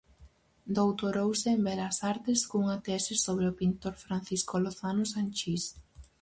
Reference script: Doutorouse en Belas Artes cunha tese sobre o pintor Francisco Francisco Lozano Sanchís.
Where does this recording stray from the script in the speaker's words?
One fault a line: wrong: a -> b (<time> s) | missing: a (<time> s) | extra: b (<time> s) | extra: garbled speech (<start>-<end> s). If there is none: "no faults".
missing: Francisco (4.5 s)